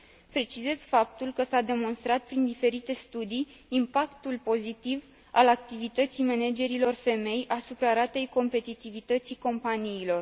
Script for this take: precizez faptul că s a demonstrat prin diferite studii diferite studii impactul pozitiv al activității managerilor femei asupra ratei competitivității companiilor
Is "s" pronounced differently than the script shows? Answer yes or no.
no